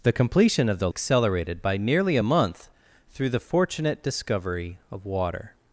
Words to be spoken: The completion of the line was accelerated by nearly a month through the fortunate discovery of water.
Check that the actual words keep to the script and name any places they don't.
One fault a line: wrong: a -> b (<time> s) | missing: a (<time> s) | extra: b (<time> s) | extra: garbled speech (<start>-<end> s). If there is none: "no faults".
missing: line was (0.9 s)